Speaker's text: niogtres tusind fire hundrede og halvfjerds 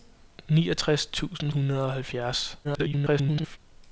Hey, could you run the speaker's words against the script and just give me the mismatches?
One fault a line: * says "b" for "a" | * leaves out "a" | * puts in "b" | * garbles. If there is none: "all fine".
* leaves out "fire"
* garbles